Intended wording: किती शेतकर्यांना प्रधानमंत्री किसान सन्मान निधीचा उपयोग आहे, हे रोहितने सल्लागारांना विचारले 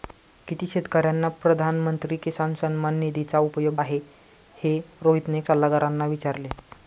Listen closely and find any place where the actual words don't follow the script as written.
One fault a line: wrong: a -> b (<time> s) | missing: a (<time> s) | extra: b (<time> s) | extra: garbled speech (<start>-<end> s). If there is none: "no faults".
no faults